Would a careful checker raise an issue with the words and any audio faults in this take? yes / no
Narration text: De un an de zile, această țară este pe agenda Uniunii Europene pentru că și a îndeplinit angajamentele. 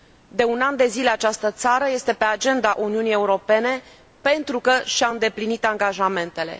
no